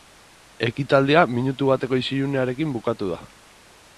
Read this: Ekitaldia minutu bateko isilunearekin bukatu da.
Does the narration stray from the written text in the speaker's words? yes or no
no